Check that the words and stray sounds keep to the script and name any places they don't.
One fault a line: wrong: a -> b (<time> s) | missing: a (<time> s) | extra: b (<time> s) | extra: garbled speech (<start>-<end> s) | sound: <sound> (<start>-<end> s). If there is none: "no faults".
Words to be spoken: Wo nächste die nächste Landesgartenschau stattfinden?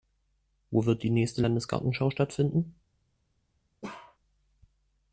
wrong: nächste -> wird (0.9 s)
sound: bark (3.8-4.2 s)